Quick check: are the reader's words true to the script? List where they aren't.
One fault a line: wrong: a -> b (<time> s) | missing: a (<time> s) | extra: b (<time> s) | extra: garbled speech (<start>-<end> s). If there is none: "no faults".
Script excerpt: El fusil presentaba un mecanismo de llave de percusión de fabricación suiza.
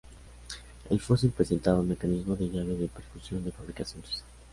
no faults